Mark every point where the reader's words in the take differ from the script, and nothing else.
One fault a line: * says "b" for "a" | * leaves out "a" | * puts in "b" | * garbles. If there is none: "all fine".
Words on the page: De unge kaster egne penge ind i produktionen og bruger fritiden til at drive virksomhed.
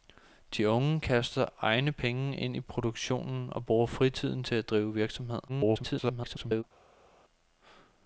* garbles